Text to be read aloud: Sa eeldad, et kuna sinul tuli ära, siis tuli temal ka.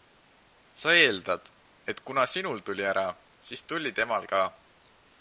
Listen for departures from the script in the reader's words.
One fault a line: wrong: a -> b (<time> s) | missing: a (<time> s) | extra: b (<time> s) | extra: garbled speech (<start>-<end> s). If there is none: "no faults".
no faults